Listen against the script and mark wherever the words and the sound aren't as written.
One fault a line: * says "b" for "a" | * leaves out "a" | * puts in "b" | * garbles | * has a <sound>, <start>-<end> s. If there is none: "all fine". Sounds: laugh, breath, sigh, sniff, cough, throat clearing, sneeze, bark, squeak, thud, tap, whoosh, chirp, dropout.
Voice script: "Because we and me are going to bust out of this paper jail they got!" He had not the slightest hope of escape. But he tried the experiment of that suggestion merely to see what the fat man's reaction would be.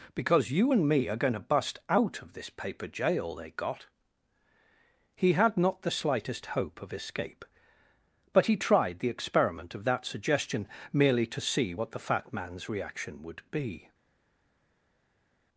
* says "you" for "we"